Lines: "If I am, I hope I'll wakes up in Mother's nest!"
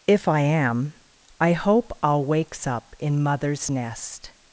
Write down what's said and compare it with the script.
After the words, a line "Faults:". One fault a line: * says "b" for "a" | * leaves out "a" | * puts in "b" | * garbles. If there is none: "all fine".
"If I am, I hope I'll wakes up in Mother's nest!"
Faults:
all fine